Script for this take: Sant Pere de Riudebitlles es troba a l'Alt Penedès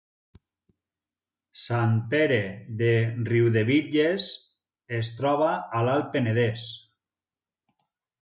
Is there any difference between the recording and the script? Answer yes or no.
no